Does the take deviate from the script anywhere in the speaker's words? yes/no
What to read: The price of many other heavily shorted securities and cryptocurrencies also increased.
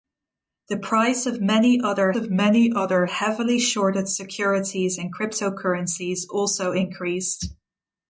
yes